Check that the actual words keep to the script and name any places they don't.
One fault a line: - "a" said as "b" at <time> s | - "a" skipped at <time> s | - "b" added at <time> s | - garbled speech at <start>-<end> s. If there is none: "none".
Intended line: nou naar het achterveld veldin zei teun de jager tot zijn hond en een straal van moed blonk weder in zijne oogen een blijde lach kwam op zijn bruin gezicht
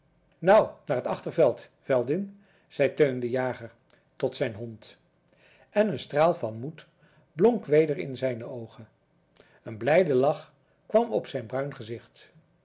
none